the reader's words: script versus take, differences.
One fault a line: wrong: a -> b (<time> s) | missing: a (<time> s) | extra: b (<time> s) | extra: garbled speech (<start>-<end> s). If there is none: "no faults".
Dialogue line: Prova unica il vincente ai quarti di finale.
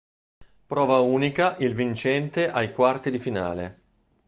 no faults